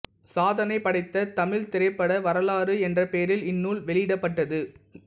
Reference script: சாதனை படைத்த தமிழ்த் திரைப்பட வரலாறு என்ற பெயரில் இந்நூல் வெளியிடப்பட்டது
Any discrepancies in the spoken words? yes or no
no